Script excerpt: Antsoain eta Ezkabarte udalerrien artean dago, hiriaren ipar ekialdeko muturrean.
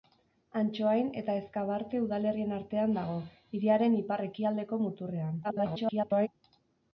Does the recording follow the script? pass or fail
fail